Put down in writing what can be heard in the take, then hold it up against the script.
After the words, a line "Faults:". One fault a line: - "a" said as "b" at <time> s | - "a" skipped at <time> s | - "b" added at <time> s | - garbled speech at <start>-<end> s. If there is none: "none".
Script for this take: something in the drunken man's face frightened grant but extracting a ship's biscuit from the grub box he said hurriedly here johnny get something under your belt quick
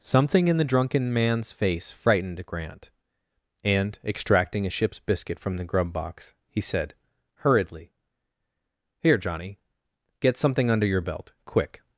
something in the drunken man's face frightened grant and extracting a ship's biscuit from the grub box he said hurriedly here johnny get something under your belt quick
Faults:
- "but" said as "and" at 3.6 s